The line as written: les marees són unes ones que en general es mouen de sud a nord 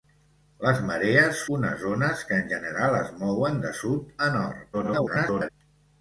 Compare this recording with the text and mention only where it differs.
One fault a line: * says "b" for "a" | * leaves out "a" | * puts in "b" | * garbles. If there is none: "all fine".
* leaves out "són"
* garbles